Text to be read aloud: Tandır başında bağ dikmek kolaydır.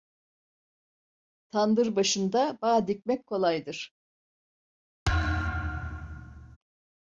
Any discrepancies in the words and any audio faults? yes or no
yes